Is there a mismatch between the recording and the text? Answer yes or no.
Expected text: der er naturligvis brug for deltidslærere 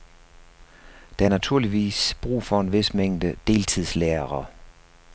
yes